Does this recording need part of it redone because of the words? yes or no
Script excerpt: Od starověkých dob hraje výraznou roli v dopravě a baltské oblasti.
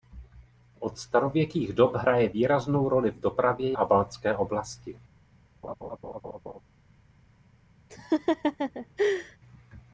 no